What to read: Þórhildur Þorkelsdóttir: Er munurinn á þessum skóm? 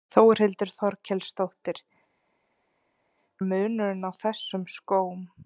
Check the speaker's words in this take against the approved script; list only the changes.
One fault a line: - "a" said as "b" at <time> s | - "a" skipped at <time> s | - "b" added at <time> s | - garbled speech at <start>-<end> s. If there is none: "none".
none